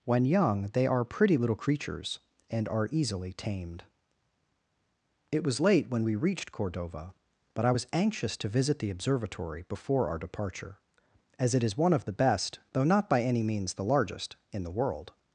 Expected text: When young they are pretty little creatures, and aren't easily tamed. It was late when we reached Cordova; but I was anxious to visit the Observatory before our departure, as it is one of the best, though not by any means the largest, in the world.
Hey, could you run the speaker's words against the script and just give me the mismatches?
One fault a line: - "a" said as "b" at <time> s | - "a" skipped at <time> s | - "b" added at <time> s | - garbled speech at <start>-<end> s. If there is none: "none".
- "aren't" said as "are" at 2.7 s